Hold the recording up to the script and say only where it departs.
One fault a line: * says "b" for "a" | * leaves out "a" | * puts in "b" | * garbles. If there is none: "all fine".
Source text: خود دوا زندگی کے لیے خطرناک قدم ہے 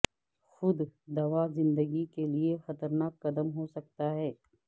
* puts in "ہو سکتا"